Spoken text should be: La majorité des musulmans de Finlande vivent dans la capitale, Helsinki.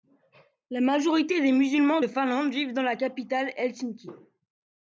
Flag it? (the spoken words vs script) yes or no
no